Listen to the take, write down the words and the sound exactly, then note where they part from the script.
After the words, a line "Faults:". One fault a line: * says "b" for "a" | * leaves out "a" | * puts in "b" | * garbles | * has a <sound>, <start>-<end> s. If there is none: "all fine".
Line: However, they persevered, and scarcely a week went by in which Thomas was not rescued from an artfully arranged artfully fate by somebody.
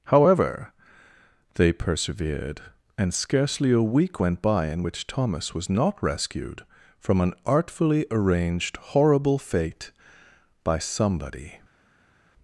However, they persevered, and scarcely a week went by in which Thomas was not rescued from an artfully arranged horrible fate by somebody.
Faults:
* says "horrible" for "artfully"